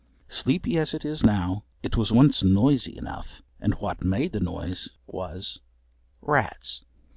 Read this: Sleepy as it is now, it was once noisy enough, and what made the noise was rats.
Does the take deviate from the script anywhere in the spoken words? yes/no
no